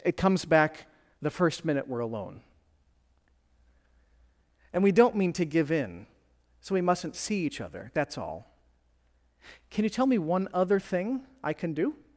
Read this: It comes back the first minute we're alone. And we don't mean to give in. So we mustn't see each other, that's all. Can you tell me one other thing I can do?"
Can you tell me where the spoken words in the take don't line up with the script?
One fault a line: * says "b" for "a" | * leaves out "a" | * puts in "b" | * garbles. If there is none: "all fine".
all fine